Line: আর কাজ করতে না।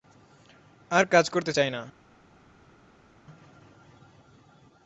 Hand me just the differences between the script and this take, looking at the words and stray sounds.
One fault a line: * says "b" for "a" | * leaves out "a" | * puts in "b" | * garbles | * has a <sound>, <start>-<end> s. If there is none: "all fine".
* puts in "চাই"